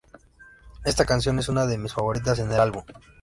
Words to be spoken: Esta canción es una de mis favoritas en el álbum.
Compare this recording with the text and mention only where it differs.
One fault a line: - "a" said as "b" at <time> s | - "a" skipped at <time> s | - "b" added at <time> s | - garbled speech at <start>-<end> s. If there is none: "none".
none